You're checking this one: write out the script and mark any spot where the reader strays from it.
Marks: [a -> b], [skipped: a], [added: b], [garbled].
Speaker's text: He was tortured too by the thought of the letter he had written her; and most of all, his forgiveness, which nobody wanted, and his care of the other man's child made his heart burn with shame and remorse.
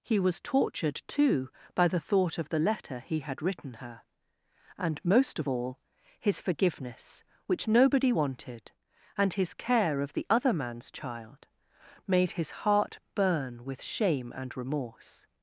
He was tortured too by the thought of the letter he had written her; and most of all, his forgiveness, which nobody wanted, and his care of the other man's child made his heart burn with shame and remorse.